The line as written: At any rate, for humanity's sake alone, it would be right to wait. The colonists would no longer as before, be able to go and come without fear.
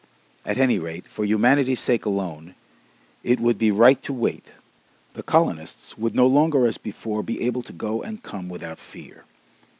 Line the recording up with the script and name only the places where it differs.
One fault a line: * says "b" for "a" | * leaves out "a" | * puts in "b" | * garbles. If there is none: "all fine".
all fine